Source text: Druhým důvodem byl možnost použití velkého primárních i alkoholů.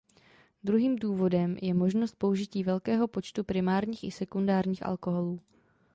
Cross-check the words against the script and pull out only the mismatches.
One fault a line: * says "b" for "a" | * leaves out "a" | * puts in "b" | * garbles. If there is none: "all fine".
* says "je" for "byl"
* puts in "počtu"
* puts in "sekundárních"